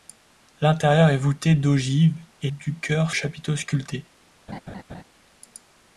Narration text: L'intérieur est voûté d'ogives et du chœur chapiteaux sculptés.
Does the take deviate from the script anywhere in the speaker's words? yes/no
no